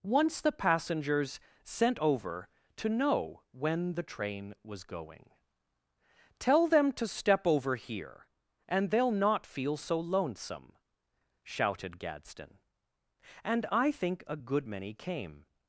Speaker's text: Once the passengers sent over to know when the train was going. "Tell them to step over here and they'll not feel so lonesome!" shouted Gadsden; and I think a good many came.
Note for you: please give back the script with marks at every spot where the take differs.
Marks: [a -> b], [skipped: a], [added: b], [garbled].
Once the passengers sent over to know when the train was going. "Tell them to step over here and they'll not feel so lonesome!" shouted Gadsden; and I think a good many came.